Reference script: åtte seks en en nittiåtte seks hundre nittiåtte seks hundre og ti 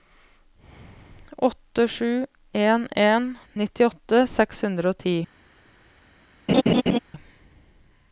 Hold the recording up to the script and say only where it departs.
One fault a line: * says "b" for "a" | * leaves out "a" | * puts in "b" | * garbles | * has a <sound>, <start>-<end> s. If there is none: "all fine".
* says "sju" for "seks"
* leaves out "nittiåtte seks hundre"
* has a laugh, 6.5-7.0 s